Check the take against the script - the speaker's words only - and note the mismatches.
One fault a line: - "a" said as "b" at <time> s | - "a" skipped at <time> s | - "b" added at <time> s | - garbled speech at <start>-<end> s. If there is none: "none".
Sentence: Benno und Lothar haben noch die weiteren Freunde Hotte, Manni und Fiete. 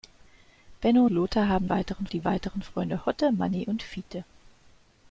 - "und" skipped at 1.1 s
- "noch" said as "weiteren" at 1.7 s